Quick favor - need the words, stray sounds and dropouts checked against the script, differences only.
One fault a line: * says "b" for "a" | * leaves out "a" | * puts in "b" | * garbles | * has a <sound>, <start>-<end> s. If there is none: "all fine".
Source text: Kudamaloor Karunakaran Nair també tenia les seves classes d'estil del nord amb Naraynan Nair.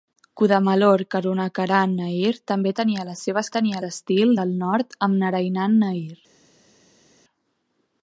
* says "tenia" for "classes"